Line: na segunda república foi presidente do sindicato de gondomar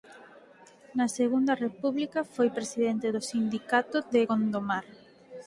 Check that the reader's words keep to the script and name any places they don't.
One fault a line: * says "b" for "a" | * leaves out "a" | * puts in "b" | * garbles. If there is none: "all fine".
all fine